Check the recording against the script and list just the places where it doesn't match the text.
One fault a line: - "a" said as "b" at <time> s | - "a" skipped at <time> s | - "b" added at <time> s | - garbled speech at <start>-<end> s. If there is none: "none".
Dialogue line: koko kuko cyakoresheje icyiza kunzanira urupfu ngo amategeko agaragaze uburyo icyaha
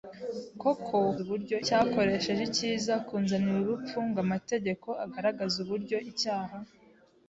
- "kuko" said as "uburyo" at 1.2 s